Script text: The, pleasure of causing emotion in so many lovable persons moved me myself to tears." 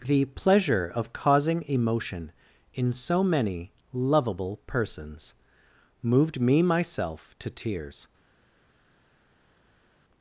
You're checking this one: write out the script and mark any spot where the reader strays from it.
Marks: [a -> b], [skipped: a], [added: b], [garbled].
The, pleasure of causing emotion in so many lovable persons moved me myself to tears."